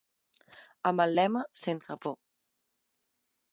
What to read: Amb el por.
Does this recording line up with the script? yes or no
no